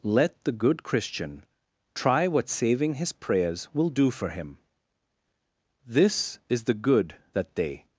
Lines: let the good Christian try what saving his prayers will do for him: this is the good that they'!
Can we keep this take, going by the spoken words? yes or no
yes